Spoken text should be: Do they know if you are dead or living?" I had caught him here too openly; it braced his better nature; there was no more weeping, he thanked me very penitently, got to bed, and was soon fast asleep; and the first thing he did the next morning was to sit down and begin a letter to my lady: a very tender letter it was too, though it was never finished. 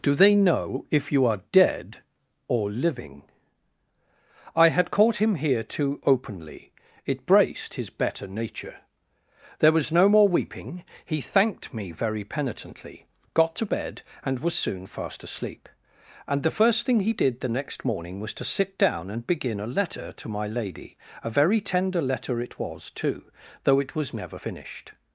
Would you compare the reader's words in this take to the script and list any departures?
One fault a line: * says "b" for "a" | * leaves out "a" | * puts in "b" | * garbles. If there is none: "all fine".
all fine